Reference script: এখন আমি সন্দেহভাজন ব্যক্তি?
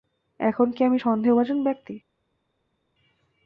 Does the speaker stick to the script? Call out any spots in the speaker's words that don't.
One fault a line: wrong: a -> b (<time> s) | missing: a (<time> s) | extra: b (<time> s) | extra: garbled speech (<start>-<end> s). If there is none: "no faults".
extra: কি (0.7 s)